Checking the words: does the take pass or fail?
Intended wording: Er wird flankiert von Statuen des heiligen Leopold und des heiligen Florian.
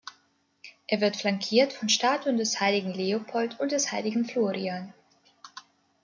pass